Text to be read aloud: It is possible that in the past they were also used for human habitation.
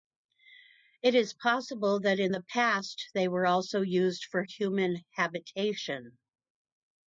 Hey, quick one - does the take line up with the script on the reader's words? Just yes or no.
yes